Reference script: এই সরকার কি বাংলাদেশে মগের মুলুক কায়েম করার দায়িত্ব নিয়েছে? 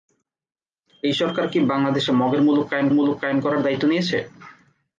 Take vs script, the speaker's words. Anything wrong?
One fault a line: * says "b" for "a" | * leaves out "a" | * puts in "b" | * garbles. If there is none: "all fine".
* puts in "মুলুক কায়েম"